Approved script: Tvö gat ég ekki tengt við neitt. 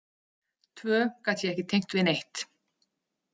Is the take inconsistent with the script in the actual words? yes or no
no